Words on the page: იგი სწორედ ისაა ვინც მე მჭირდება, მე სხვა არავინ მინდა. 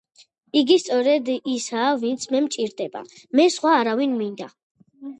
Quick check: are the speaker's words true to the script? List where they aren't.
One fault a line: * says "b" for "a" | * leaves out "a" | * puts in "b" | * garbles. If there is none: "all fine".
all fine